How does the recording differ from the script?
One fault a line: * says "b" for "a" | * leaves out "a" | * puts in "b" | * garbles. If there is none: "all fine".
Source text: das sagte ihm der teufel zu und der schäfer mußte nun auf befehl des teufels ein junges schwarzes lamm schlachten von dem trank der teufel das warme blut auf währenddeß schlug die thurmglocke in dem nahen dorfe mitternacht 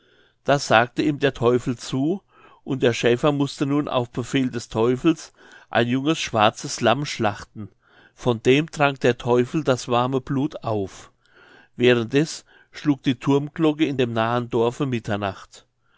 all fine